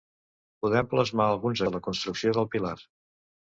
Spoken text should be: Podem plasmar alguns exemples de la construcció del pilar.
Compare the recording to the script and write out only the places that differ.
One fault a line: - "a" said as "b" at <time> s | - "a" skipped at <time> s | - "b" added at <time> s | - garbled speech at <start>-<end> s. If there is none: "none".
- "exemples" skipped at 1.6 s